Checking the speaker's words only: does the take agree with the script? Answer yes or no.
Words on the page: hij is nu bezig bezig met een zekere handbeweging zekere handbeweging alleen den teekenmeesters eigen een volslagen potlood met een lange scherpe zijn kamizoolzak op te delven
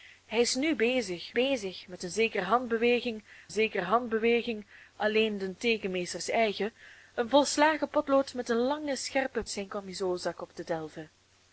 yes